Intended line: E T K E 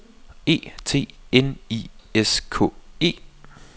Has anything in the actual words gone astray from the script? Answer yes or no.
yes